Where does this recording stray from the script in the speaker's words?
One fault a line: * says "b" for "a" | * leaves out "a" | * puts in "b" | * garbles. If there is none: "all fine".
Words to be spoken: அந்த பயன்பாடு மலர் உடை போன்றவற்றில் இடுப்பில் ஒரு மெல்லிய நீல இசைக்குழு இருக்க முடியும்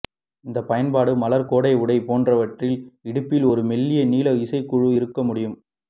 * says "இந்த" for "அந்த"
* puts in "கோடை"